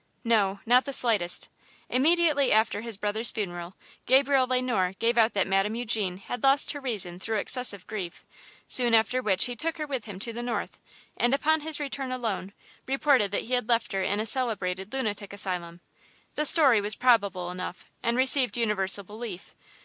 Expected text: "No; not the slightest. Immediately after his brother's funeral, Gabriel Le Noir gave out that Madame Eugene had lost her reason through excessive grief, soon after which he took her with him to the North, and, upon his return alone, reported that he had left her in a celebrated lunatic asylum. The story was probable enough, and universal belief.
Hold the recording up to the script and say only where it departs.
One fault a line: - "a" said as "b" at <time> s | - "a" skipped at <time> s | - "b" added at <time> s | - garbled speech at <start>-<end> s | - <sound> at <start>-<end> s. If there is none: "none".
- "received" added at 18.1 s